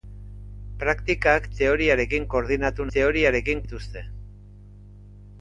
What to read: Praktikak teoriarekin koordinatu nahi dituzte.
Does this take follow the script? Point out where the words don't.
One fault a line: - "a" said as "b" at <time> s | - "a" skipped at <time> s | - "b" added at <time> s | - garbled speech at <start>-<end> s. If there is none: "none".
- "nahi" said as "teoriarekin" at 2.9 s